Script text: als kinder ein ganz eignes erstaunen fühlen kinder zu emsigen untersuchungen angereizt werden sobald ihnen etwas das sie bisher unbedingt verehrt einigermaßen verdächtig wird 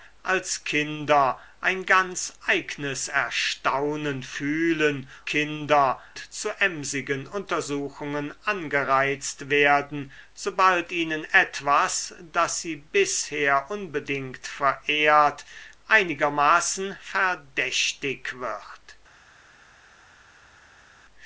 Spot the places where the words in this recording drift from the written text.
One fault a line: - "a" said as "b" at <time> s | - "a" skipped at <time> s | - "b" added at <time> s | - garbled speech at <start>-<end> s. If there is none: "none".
none